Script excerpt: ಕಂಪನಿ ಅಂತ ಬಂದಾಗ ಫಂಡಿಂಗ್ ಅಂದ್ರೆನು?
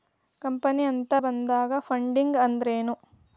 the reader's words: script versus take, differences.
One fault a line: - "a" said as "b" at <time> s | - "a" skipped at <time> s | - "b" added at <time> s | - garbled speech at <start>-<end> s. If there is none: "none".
none